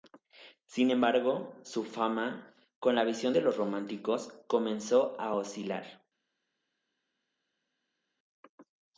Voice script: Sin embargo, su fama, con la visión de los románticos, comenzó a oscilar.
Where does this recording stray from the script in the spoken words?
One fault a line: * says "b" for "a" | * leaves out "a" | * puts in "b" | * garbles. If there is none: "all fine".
all fine